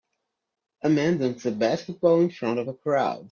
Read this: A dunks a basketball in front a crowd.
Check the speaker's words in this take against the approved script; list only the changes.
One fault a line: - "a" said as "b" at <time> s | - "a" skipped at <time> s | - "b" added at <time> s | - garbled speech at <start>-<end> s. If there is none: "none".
- "man" added at 0.9 s
- "of" added at 2.6 s